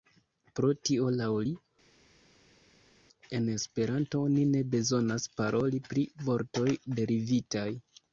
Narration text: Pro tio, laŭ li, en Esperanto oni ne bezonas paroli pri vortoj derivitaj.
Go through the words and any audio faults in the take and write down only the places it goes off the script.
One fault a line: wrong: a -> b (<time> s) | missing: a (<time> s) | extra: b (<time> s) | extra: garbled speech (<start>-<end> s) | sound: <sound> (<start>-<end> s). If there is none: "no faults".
no faults